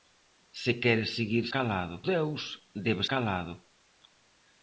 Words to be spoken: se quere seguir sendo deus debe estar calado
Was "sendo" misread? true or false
true